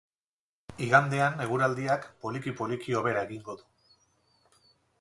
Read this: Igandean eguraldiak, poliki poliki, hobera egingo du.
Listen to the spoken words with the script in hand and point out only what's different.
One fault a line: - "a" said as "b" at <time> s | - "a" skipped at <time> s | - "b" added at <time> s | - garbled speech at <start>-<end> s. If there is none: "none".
none